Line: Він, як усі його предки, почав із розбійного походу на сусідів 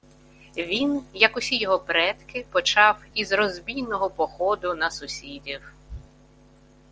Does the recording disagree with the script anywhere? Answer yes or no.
no